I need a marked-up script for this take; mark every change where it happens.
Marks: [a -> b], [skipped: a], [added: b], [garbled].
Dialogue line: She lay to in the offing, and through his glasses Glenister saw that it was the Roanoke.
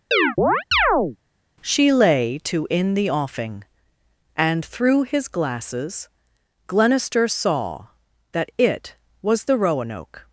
She lay to in the offing, and through his glasses Glenister saw that it was the Roanoke.